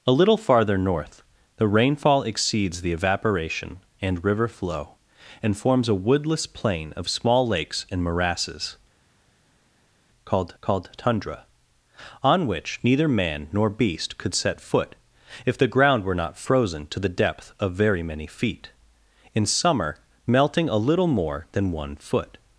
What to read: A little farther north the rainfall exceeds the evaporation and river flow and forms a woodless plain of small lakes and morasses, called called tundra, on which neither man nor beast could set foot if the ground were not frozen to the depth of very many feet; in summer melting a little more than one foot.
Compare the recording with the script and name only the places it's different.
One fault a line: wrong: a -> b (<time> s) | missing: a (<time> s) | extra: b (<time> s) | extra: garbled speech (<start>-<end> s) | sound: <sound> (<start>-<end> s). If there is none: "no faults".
no faults